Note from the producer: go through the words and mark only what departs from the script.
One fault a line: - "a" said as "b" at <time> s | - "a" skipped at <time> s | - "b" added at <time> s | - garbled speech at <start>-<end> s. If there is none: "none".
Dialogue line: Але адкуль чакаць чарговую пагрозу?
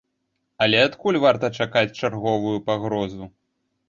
- "варта" added at 1.2 s